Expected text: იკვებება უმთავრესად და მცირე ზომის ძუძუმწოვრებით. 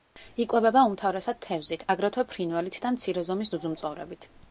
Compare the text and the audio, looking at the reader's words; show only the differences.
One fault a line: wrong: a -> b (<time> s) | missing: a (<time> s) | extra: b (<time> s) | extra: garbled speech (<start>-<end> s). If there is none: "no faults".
extra: თევზით აგრეთვე ფრინველით (1.4 s)